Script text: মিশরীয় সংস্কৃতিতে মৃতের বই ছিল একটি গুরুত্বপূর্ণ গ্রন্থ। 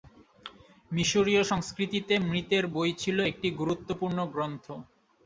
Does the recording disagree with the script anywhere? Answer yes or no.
no